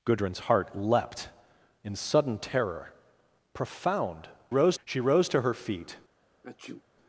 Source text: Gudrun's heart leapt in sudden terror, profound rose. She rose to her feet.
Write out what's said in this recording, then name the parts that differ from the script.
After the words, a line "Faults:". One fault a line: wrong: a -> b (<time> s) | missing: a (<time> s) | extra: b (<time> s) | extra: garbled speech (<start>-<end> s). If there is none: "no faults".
Gudrun's heart leapt in sudden terror, profound rose. She rose to her feet.
Faults:
no faults